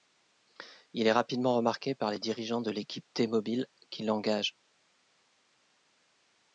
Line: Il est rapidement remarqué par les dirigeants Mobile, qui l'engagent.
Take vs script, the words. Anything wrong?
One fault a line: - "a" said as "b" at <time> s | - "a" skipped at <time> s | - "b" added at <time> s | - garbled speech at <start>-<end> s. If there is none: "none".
- "de l'équipe T" added at 2.6 s